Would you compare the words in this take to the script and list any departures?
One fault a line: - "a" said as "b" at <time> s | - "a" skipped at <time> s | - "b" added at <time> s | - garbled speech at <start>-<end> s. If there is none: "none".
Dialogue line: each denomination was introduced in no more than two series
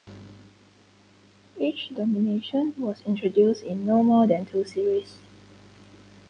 none